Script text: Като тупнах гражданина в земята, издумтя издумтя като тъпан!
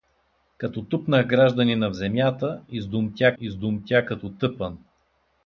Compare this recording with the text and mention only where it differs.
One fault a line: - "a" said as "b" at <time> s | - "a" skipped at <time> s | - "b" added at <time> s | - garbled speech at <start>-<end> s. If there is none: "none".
none